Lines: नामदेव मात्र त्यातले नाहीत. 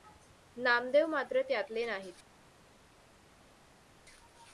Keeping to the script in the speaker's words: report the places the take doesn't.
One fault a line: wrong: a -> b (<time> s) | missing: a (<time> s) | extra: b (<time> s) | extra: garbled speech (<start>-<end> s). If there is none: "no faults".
no faults